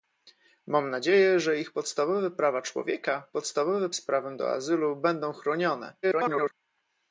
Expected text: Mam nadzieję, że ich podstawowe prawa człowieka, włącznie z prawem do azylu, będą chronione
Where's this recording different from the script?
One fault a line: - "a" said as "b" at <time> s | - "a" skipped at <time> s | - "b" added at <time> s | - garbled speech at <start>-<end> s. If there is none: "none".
- "włącznie" said as "podstawowe" at 3.3 s
- garbled speech at 6.0-6.5 s